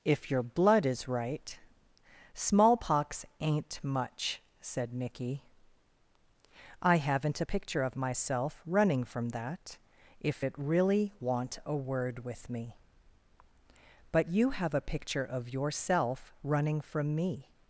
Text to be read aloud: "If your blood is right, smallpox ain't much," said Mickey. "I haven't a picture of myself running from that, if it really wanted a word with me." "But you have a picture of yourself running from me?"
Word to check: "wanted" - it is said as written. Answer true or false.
false